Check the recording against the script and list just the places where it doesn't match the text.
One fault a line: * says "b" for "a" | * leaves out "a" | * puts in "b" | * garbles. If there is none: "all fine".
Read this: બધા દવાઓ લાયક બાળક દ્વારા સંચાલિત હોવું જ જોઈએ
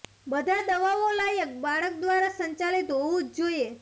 all fine